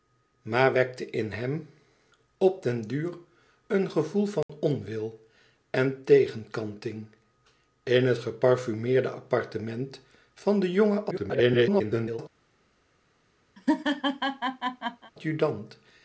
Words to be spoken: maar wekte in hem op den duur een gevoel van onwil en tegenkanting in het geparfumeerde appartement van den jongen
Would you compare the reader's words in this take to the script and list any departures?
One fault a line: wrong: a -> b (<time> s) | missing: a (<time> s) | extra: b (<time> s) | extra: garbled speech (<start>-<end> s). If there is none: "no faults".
extra: garbled speech (11.1-12.2 s)